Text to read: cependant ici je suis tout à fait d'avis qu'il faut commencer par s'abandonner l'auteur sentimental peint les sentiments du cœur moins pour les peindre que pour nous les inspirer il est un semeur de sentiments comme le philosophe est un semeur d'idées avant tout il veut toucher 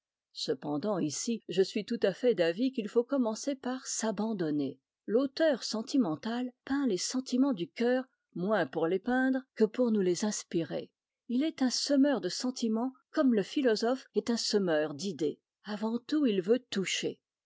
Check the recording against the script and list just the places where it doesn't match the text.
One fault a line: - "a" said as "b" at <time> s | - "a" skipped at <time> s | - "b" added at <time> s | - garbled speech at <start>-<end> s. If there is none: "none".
none